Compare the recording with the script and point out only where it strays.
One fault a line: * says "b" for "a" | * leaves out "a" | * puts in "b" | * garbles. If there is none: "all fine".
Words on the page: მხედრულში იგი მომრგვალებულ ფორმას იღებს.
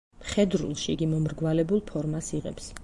all fine